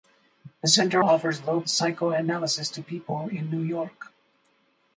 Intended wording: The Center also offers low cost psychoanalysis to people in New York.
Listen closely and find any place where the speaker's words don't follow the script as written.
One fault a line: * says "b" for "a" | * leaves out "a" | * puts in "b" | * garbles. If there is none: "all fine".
* leaves out "also"
* leaves out "cost"